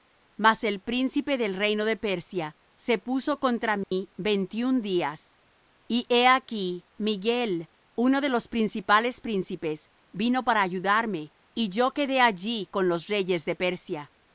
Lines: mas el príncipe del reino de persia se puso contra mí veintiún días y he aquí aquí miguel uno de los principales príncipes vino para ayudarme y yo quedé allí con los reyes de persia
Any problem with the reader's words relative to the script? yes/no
yes